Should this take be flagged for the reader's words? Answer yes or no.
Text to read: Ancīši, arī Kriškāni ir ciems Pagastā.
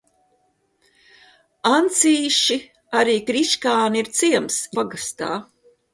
no